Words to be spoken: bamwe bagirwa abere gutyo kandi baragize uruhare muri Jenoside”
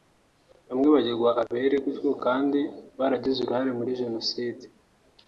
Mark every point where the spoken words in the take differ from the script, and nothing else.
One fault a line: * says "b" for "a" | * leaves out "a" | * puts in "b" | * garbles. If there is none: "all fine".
all fine